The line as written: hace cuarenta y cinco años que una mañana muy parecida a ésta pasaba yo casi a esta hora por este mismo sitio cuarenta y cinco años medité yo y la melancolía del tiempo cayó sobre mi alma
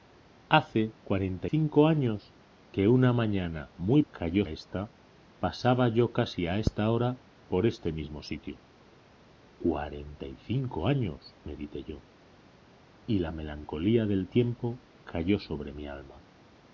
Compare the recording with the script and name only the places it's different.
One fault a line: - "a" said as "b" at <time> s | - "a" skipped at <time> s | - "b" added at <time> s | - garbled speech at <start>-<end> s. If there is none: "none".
- "y" skipped at 1.5 s
- "parecida" said as "cayó" at 4.1 s